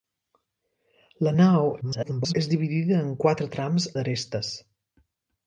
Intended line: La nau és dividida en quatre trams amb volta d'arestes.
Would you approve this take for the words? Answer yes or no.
no